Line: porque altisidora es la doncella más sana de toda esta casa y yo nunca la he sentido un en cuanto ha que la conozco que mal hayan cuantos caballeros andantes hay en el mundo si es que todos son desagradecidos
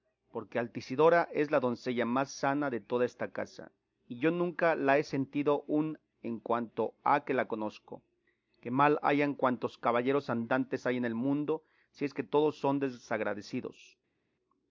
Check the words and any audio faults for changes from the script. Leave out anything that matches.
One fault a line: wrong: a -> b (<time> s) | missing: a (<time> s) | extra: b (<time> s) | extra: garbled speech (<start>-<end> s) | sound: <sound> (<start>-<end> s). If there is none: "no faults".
no faults